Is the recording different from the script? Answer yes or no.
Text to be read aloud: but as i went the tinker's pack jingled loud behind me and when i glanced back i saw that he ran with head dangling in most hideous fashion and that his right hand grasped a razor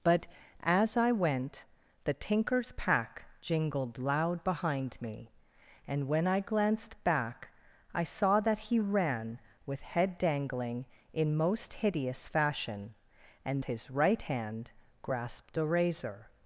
yes